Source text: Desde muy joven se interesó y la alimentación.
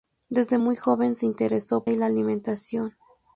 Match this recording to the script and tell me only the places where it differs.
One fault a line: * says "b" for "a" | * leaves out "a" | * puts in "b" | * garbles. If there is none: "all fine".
all fine